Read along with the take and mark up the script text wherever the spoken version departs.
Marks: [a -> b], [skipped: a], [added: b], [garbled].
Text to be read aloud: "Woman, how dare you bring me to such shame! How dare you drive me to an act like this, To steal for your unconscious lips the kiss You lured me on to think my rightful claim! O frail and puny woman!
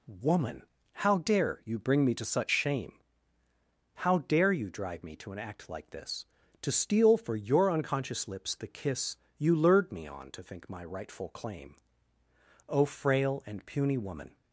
"Woman, how dare you bring me to such shame! How dare you drive me to an act like this, To steal for your unconscious lips the kiss You lured me on to think my rightful claim! O frail and puny woman!